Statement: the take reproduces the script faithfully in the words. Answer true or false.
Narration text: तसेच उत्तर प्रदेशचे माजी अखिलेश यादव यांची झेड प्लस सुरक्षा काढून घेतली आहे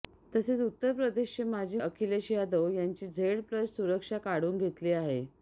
true